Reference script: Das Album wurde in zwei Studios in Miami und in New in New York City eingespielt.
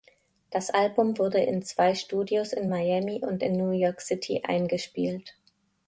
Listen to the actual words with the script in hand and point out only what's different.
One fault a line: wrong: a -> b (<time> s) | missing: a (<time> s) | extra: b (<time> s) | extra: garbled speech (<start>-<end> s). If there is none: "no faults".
missing: in New (3.7 s)